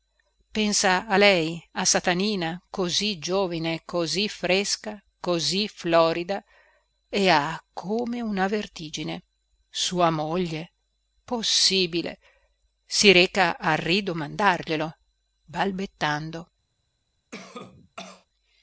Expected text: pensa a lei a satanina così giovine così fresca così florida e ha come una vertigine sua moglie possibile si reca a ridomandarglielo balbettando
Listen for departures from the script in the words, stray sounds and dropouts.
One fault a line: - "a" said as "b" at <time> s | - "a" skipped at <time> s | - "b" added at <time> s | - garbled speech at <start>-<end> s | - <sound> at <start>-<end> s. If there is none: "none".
- cough at 17.3-18.3 s